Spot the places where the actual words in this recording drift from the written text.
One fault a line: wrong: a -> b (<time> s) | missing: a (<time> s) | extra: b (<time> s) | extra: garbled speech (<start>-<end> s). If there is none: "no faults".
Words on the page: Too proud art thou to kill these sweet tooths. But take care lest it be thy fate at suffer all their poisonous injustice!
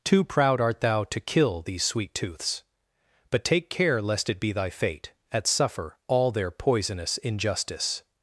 no faults